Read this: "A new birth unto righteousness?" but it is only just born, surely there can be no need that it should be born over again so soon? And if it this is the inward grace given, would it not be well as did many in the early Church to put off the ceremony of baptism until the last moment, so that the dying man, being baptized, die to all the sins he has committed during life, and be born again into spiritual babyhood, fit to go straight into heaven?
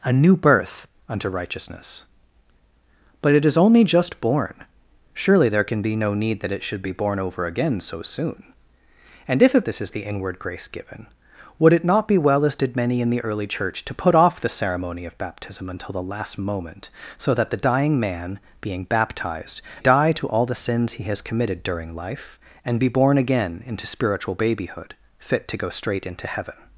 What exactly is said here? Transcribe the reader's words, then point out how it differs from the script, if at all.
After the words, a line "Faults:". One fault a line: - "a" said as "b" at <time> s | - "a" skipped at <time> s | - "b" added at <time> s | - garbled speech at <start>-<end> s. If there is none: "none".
"A new birth unto righteousness?" but it is only just born, surely there can be no need that it should be born over again so soon? And if it this is the inward grace given, would it not be well as did many in the early Church to put off the ceremony of baptism until the last moment, so that the dying man, being baptized, die to all the sins he has committed during life, and be born again into spiritual babyhood, fit to go straight into heaven?
Faults:
none